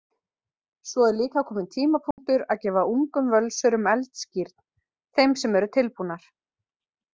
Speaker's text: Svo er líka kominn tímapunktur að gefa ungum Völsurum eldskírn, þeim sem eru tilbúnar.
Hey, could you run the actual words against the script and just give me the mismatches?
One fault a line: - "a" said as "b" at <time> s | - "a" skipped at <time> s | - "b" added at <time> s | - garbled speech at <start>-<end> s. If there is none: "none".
none